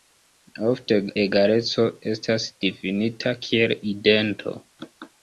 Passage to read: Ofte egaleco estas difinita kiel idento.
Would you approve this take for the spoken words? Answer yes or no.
yes